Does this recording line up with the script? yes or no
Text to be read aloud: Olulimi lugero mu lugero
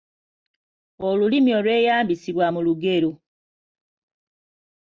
no